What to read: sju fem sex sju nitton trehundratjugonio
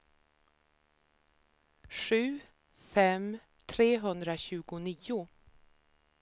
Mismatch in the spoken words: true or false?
true